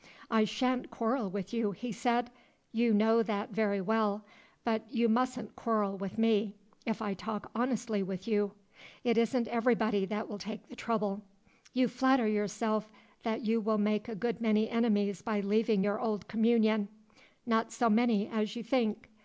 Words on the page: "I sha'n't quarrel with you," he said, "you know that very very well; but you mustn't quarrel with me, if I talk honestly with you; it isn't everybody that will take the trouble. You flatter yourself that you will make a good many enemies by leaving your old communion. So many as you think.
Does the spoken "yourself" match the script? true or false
true